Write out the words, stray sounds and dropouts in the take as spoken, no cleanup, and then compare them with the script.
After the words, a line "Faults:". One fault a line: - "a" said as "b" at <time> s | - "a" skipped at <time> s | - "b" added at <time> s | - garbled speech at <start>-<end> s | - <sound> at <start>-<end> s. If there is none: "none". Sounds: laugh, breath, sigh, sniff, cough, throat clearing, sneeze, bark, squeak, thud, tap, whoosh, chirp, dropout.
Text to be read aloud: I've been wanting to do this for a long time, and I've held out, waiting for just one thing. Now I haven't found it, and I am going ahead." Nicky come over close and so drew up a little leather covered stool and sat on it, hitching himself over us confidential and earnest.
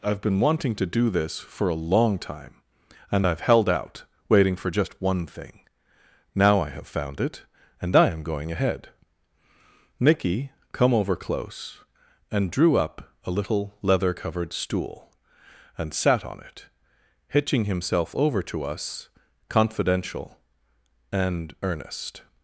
I've been wanting to do this for a long time, and I've held out, waiting for just one thing. Now I have found it, and I am going ahead." Nicky come over close and drew up a little leather covered stool and sat on it, hitching himself over to us confidential and earnest.
Faults:
- "haven't" said as "have" at 6.7 s
- "so" skipped at 12.5 s
- "to" added at 18.4 s